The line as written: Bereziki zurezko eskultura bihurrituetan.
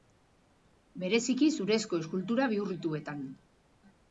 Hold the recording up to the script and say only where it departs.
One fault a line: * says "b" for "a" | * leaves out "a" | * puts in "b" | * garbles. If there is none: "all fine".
all fine